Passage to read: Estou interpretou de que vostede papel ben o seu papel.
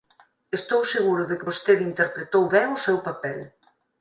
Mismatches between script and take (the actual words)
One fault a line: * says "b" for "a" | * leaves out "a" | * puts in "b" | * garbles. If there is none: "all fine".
* says "seguro" for "interpretou"
* says "interpretou" for "papel"